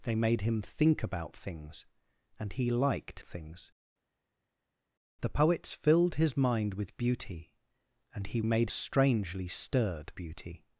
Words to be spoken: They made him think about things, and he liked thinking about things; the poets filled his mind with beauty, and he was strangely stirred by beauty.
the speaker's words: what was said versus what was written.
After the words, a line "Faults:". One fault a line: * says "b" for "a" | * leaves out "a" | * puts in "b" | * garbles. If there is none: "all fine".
They made him think about things, and he liked things; the poets filled his mind with beauty, and he made strangely stirred beauty.
Faults:
* leaves out "thinking about"
* says "made" for "was"
* leaves out "by"